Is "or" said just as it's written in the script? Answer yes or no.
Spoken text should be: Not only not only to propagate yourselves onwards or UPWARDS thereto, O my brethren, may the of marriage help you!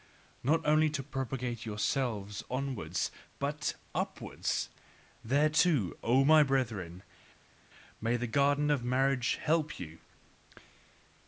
no